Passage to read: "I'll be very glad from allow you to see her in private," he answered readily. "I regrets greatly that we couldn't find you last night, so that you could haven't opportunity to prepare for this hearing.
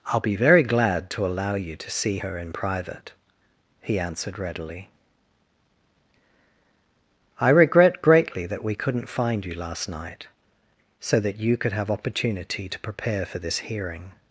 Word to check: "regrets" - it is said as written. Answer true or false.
false